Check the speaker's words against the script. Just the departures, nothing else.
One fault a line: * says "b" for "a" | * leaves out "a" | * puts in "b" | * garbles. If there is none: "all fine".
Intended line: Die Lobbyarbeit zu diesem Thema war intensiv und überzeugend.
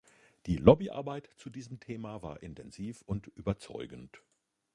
all fine